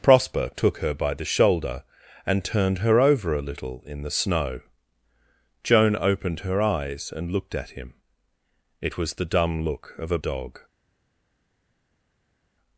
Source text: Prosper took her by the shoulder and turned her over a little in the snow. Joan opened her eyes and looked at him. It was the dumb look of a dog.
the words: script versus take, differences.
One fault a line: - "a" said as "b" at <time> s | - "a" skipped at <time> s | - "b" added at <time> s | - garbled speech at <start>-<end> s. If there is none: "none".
none